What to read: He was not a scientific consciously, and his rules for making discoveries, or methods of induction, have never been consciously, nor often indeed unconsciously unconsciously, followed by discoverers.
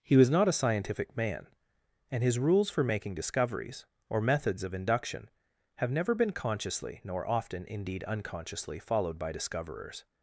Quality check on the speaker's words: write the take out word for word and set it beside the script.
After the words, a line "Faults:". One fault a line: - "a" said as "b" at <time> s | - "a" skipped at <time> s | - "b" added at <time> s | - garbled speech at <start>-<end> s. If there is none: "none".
He was not a scientific man, and his rules for making discoveries, or methods of induction, have never been consciously, nor often indeed unconsciously, followed by discoverers.
Faults:
- "consciously" said as "man" at 1.1 s
- "unconsciously" skipped at 8.8 s